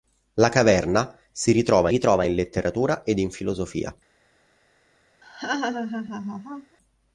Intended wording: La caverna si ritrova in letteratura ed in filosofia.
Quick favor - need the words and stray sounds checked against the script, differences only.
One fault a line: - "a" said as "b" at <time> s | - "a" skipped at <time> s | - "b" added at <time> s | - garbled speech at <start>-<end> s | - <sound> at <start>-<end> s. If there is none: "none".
- "ritrova" added at 1.9 s
- laugh at 5.2-6.8 s